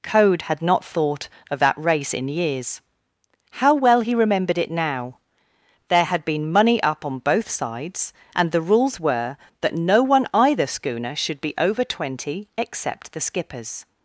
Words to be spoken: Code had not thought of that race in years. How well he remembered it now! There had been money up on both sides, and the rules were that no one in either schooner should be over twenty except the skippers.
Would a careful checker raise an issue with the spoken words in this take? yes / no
yes